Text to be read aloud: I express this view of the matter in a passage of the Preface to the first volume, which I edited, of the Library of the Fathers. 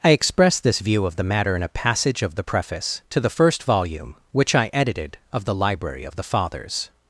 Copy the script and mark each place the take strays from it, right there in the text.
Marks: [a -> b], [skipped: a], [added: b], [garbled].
I express this view of the matter in a passage of the Preface to the first volume, which I edited, of the Library of the Fathers.